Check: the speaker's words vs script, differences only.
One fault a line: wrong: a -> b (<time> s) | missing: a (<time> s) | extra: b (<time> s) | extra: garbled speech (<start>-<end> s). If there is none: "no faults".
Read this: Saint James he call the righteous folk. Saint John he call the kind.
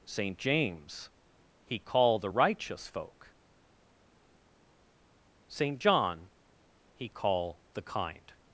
no faults